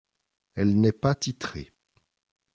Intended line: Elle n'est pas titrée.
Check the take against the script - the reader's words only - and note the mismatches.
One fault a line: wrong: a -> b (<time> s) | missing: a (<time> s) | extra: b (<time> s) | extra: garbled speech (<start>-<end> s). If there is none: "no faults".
no faults